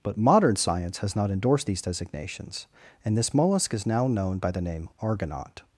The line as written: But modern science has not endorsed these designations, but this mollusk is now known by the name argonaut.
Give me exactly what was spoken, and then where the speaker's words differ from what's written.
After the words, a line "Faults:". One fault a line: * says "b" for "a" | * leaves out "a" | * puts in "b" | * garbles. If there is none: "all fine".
But modern science has not endorsed these designations, and this mollusk is now known by the name argonaut.
Faults:
* says "and" for "but"